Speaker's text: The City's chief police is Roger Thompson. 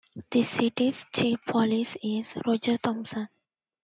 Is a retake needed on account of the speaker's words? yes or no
no